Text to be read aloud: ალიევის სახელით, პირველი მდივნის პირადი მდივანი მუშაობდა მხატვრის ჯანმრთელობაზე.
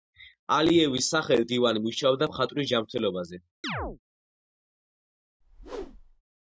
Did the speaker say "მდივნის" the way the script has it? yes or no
no